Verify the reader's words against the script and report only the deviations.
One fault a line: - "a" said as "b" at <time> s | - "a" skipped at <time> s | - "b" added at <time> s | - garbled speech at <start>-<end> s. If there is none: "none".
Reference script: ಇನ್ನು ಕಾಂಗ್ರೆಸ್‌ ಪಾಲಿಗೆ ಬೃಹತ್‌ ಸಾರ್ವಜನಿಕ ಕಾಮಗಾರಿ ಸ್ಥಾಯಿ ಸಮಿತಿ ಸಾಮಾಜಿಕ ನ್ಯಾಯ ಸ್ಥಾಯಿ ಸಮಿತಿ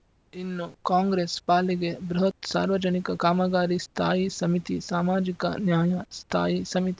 none